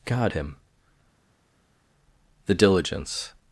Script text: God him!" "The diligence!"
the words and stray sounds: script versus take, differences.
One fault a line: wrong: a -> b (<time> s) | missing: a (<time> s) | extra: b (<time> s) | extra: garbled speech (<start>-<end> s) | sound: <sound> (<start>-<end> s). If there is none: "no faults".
no faults